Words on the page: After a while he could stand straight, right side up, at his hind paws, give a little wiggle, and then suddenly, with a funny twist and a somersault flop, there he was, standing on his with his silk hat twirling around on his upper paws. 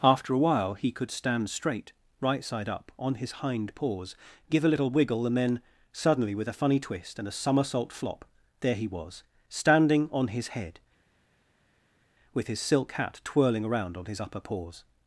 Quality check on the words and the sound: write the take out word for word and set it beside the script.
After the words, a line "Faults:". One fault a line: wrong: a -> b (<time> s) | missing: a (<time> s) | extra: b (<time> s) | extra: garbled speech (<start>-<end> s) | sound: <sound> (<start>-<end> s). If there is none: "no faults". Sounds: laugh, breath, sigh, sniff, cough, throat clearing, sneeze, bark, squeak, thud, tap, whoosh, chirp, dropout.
After a while he could stand straight, right side up, on his hind paws, give a little wiggle, and then suddenly, with a funny twist and a somersault flop, there he was, standing on his head, with his silk hat twirling around on his upper paws.
Faults:
wrong: at -> on (3.0 s)
extra: head (10.5 s)